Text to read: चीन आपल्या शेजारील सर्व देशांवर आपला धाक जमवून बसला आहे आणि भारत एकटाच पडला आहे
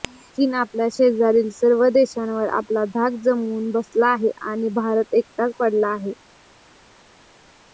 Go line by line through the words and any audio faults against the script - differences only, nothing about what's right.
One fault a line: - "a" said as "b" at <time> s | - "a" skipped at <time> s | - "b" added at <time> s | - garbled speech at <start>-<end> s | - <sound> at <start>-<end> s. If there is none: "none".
none